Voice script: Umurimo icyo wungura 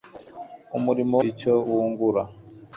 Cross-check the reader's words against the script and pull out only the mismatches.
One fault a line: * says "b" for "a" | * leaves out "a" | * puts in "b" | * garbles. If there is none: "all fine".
all fine